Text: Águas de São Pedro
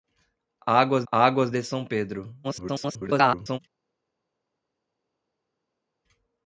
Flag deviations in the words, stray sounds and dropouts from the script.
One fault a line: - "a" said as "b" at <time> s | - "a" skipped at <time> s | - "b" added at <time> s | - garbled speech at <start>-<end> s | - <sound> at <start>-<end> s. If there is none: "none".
- "águas" added at 1.1 s
- garbled speech at 2.4-3.6 s